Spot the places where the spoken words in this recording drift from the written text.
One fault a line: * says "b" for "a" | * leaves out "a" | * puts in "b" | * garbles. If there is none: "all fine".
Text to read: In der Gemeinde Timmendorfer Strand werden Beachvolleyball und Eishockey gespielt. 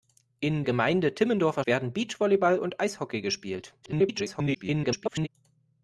* leaves out "der"
* leaves out "Strand"
* garbles